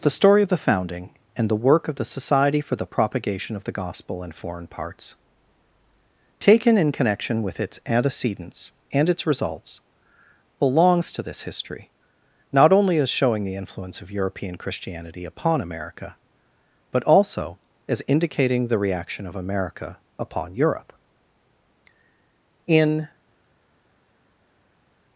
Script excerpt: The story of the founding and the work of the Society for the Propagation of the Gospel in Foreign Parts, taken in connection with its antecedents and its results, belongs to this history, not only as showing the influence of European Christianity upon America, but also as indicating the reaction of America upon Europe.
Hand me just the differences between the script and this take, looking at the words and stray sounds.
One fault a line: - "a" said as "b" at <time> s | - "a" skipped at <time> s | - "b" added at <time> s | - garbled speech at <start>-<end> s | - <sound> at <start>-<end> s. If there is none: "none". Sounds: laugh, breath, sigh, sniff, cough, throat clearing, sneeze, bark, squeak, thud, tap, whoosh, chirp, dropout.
- "In" added at 22.7 s